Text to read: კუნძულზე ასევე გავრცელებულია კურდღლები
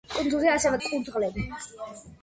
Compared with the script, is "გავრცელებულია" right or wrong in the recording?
wrong